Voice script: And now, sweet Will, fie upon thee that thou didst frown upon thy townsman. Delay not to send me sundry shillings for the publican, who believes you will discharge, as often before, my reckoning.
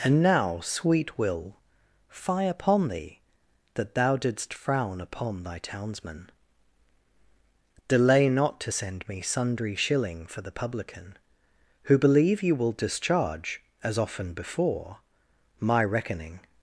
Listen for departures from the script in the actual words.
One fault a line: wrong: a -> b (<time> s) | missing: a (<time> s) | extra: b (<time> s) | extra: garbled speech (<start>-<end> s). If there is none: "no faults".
wrong: shillings -> shilling (9.7 s)
wrong: believes -> believe (12.0 s)